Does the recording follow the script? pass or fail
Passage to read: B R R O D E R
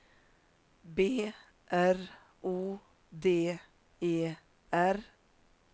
fail